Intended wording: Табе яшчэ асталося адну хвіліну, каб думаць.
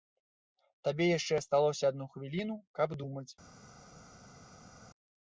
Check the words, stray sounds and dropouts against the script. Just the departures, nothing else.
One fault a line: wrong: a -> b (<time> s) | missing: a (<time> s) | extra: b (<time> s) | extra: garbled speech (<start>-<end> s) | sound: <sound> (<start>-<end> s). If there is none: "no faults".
no faults